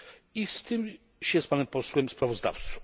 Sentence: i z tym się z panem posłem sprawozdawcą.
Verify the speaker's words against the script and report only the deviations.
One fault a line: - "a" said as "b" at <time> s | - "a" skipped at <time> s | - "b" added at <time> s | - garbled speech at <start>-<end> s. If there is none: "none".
none